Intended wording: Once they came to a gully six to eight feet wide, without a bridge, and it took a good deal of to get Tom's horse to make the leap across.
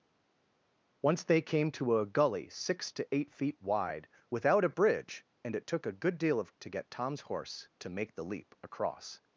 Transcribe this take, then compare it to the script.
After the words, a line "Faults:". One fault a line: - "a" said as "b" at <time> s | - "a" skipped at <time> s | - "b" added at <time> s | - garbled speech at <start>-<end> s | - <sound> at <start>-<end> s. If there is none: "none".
Once they came to a gully six to eight feet wide, without a bridge, and it took a good deal of to get Tom's horse to make the leap across.
Faults:
none